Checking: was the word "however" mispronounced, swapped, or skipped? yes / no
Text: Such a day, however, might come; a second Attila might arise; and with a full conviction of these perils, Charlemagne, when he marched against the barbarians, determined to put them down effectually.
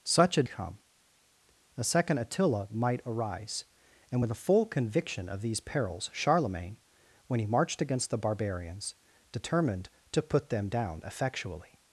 yes